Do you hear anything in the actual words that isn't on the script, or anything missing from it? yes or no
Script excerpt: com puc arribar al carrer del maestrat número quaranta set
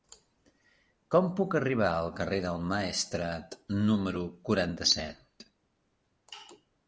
no